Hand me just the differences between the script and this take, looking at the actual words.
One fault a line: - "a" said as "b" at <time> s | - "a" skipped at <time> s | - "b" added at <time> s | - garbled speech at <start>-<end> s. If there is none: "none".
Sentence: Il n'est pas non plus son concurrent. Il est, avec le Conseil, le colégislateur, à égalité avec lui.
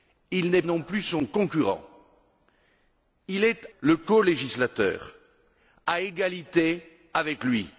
- "pas" skipped at 0.6 s
- "avec le Conseil" skipped at 3.7 s